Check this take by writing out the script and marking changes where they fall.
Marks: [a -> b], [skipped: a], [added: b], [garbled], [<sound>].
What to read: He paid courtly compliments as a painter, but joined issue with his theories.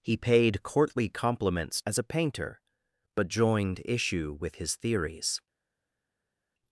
He paid courtly compliments as a painter, but joined issue with his theories.